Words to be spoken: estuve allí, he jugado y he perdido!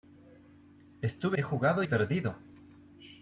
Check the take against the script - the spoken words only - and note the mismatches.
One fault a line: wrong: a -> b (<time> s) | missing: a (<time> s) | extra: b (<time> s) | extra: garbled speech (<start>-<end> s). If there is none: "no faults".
missing: allí (1.4 s)
missing: y (1.8 s)